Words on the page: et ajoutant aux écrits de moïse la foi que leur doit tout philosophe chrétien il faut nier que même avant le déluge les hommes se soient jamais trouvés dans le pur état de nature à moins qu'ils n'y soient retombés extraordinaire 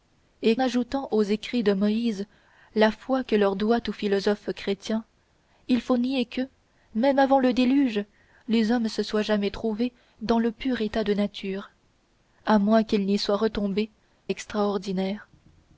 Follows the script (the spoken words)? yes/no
yes